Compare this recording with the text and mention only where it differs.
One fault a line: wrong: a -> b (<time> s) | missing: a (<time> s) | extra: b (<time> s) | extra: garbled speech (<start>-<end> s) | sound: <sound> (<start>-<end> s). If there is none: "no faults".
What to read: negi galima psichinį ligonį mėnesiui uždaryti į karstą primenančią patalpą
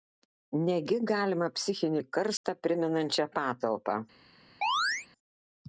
missing: ligonį mėnesiui uždaryti (2.0 s)
sound: dropout (2.4-2.4 s)
sound: chirp (4.6-5.1 s)